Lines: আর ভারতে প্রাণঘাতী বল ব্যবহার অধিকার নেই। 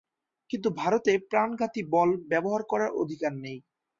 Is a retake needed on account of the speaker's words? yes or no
yes